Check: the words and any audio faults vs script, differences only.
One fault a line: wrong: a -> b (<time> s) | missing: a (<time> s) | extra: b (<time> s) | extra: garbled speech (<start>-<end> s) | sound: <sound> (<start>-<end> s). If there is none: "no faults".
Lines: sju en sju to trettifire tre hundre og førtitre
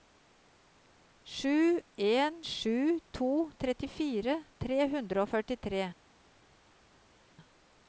no faults